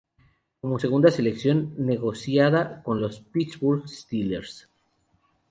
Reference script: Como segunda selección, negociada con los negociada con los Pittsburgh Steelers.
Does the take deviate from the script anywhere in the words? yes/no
yes